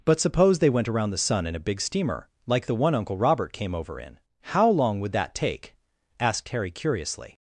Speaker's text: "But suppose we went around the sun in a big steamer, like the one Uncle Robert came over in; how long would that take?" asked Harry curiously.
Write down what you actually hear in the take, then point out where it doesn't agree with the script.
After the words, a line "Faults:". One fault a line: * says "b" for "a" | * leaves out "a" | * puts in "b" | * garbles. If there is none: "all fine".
"But suppose they went around the sun in a big steamer, like the one Uncle Robert came over in; how long would that take?" asked Harry curiously.
Faults:
* says "they" for "we"